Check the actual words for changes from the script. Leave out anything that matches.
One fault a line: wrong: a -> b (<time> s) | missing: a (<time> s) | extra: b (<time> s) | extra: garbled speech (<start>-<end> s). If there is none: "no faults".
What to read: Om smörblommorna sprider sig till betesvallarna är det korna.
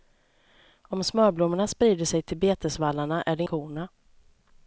no faults